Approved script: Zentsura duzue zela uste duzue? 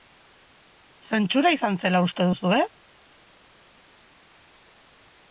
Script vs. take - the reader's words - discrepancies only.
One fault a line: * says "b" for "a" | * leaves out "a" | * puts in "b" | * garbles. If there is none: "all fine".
* says "izan" for "duzue"